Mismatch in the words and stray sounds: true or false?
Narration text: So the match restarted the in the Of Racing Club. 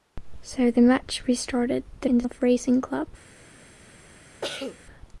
true